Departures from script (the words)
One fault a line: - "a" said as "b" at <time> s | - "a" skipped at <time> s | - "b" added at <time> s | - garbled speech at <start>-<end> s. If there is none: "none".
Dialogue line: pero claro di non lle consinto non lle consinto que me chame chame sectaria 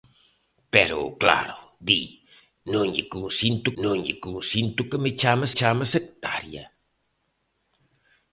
none